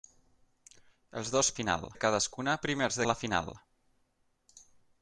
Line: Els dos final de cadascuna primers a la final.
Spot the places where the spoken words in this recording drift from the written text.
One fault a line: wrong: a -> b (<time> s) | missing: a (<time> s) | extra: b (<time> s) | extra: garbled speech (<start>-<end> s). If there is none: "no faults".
no faults